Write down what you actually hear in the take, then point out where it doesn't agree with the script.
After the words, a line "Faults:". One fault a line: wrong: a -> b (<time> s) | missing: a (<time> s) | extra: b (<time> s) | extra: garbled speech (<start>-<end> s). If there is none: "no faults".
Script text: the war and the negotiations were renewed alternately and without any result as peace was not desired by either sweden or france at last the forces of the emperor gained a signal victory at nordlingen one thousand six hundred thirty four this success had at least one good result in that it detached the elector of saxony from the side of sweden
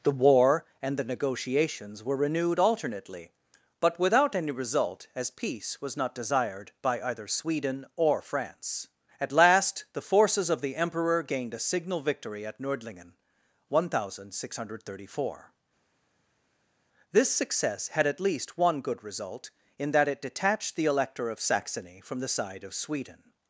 the war and the negotiations were renewed alternately but without any result as peace was not desired by either sweden or france at last the forces of the emperor gained a signal victory at nordlingen one thousand six hundred thirty four this success had at least one good result in that it detached the elector of saxony from the side of sweden
Faults:
wrong: and -> but (3.8 s)